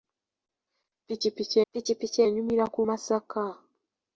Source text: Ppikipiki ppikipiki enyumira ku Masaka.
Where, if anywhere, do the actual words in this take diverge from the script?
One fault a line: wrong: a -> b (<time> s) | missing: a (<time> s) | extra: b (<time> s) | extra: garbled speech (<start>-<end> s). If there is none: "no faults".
no faults